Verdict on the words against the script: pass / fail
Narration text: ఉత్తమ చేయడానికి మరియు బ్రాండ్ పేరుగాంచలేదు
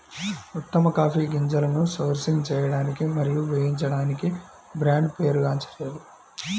fail